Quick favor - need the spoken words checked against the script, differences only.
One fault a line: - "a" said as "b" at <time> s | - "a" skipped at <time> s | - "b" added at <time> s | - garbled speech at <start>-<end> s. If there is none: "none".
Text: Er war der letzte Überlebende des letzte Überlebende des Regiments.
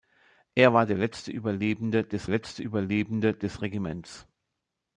none